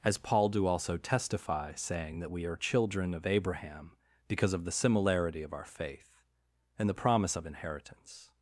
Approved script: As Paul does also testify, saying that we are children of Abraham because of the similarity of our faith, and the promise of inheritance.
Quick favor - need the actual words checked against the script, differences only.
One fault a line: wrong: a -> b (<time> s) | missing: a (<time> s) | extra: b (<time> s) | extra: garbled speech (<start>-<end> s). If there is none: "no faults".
wrong: does -> do (0.5 s)